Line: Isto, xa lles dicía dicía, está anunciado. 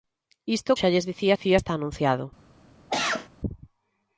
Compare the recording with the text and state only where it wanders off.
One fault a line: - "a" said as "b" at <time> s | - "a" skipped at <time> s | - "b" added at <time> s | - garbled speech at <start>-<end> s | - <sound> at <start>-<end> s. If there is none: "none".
- cough at 2.9-3.3 s